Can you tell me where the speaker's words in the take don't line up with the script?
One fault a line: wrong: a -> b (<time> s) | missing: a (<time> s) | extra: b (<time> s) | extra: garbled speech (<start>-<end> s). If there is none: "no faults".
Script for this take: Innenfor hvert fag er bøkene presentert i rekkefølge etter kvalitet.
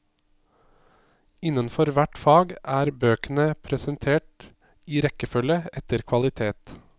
no faults